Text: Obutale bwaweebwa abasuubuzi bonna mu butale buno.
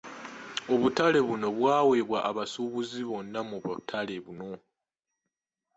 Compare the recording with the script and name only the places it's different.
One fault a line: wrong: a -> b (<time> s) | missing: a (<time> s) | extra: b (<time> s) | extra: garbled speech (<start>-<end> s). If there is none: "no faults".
extra: buno (1.3 s)